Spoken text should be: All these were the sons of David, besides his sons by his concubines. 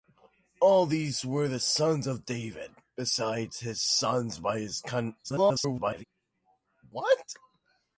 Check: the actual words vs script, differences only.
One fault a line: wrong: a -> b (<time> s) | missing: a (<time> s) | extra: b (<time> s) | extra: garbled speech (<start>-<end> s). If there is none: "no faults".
extra: garbled speech (5.2-6.0 s)